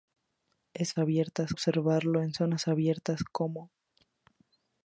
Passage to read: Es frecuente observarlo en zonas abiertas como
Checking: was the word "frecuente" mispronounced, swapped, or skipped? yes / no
yes